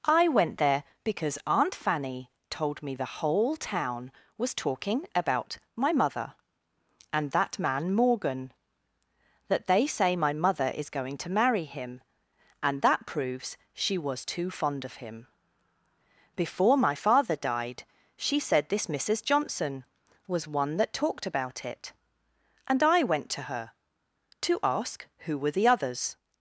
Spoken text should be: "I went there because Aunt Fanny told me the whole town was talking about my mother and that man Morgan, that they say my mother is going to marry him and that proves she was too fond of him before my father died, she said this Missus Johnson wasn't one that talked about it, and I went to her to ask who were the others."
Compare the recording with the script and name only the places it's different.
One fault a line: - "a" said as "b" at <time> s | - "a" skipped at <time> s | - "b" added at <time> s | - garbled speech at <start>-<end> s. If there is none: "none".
- "wasn't" said as "was" at 20.3 s